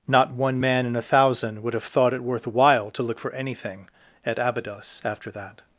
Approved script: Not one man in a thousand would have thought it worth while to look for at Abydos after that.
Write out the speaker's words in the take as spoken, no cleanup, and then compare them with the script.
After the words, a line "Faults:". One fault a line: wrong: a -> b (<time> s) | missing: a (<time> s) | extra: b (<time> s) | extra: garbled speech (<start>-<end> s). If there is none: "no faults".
Not one man in a thousand would have thought it worth while to look for anything at Abydos after that.
Faults:
extra: anything (3.3 s)